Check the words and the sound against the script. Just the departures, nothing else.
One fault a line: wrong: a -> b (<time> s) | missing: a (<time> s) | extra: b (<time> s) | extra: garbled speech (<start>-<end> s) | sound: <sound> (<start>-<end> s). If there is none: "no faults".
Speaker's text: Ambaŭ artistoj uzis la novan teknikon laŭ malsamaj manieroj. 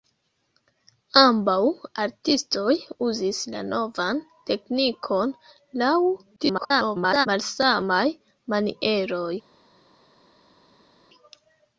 extra: garbled speech (6.4-7.3 s)